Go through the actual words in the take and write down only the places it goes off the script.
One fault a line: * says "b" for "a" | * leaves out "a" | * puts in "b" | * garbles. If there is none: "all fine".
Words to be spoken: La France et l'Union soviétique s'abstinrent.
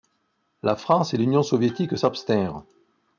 all fine